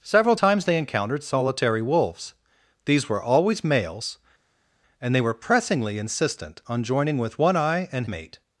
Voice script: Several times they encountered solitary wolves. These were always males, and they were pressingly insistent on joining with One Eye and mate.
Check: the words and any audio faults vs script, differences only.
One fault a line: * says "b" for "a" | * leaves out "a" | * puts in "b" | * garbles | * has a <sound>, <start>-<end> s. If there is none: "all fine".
all fine